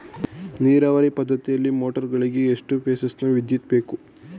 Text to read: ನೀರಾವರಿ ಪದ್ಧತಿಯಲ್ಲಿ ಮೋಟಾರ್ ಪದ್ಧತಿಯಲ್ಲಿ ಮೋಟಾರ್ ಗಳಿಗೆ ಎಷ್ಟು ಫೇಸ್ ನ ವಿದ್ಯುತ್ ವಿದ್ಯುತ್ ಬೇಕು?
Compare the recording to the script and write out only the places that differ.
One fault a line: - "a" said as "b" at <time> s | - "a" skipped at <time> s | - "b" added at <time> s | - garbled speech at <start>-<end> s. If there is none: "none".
- "ಪದ್ಧತಿಯಲ್ಲಿ ಮೋಟಾರ್" skipped at 2.1 s
- "ವಿದ್ಯುತ್" skipped at 3.7 s